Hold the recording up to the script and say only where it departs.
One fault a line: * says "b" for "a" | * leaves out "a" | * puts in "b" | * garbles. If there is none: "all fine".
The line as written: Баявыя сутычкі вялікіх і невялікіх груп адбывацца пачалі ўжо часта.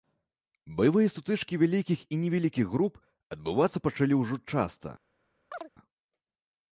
all fine